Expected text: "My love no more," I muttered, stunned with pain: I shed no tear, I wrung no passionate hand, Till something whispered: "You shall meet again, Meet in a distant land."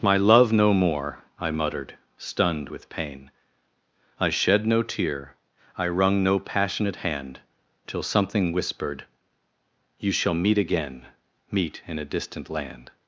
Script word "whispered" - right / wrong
right